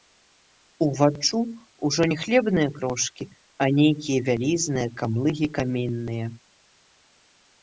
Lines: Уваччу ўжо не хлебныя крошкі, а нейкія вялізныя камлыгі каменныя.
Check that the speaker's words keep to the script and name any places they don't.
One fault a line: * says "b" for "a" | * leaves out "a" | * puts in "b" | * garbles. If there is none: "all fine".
all fine